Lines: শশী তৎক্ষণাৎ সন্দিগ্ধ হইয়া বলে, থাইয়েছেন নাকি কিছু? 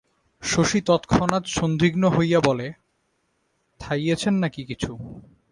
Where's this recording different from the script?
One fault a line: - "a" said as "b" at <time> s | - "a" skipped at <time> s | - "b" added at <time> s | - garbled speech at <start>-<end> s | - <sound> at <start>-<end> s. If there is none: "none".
none